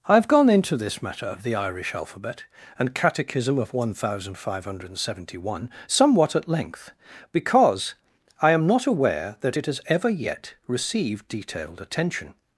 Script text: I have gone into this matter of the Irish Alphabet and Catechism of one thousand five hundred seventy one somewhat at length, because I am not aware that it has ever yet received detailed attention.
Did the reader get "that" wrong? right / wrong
right